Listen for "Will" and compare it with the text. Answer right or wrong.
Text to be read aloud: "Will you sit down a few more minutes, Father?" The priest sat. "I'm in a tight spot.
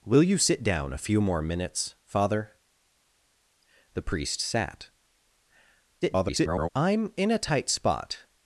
right